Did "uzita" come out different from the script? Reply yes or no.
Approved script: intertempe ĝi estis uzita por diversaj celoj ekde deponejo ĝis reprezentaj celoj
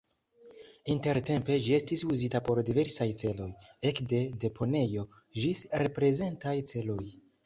no